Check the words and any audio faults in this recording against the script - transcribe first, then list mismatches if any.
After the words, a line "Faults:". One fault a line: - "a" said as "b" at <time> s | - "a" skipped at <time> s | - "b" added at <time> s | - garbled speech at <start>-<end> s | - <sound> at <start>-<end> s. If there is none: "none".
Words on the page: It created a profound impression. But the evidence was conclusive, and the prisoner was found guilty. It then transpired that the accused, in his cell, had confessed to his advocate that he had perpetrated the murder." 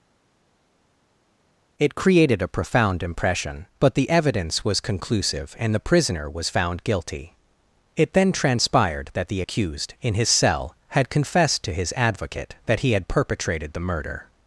It created a profound impression. But the evidence was conclusive, and the prisoner was found guilty. It then transpired that the accused, in his cell, had confessed to his advocate that he had perpetrated the murder."
Faults:
none